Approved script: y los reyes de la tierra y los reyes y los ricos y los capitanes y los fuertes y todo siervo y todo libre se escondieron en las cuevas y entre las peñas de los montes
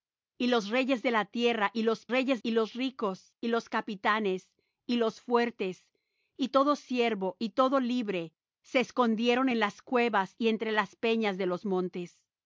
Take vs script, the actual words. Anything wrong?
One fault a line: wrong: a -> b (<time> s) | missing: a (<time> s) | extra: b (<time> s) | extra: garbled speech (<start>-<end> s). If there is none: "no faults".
no faults